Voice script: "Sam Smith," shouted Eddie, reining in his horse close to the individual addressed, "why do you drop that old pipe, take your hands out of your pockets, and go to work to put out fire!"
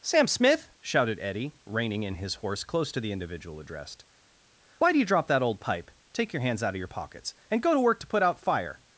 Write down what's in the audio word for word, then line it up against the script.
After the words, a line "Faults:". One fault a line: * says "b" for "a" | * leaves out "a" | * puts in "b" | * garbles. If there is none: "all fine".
"Sam Smith," shouted Eddie, reining in his horse close to the individual addressed, "why do you drop that old pipe, take your hands out of your pockets, and go to work to put out fire!"
Faults:
all fine